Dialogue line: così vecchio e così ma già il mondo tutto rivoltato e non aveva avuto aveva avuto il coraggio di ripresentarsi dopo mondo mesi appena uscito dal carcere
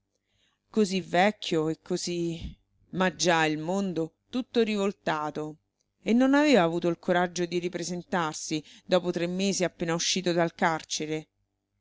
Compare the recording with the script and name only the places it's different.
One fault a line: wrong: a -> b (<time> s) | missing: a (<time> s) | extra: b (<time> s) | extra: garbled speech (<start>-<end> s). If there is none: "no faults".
missing: aveva avuto (6.9 s)
wrong: mondo -> tre (9.1 s)